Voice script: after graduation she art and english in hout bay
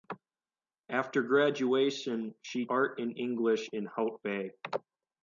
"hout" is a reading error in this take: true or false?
false